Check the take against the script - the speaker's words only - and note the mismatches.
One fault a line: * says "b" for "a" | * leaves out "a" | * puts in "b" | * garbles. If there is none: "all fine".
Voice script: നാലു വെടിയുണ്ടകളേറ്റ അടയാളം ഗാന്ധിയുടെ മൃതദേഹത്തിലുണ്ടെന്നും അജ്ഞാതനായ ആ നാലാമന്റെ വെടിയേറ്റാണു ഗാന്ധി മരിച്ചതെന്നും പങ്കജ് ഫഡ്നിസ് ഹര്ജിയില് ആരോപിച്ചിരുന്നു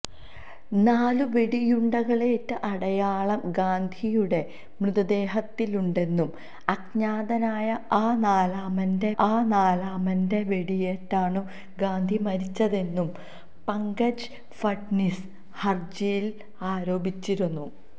* puts in "ആ നാലാമന്റെ"